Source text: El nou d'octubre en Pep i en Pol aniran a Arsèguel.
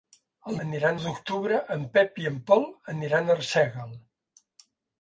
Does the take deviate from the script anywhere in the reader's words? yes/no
yes